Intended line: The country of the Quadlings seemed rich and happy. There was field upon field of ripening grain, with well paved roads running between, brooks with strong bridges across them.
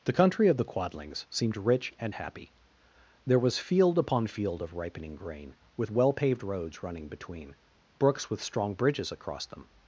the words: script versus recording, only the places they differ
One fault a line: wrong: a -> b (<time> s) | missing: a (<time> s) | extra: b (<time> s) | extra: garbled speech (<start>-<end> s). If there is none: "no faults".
no faults